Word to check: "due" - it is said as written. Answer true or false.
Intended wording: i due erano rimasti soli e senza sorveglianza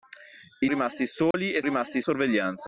false